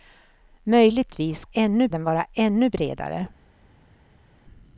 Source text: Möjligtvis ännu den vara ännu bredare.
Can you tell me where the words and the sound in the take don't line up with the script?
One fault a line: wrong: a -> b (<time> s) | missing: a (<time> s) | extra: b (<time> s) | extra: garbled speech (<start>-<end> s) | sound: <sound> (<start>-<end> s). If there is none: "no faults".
no faults